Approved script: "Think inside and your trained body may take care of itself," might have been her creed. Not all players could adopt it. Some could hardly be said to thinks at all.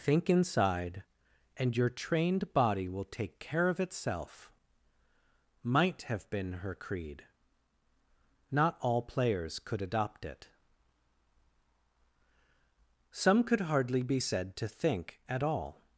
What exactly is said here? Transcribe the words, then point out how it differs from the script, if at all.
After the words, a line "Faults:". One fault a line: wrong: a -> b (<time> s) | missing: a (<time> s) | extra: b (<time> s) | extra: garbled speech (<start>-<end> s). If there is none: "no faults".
"Think inside and your trained body will take care of itself," might have been her creed. Not all players could adopt it. Some could hardly be said to think at all.
Faults:
wrong: may -> will (2.9 s)
wrong: thinks -> think (14.7 s)